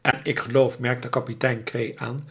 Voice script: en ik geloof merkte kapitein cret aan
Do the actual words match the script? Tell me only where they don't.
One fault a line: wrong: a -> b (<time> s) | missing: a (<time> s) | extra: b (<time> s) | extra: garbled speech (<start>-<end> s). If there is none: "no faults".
no faults